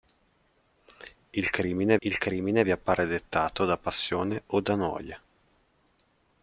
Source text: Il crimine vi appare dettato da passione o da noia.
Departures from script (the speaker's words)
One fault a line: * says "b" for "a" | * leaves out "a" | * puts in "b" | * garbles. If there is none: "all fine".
* puts in "il crimine"